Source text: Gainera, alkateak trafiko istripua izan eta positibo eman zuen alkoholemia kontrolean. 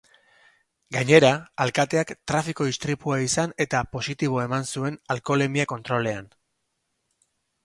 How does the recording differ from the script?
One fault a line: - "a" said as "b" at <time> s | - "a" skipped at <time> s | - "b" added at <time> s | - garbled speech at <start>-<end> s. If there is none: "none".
none